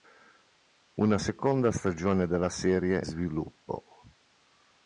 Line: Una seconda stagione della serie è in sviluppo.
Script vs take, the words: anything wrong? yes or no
yes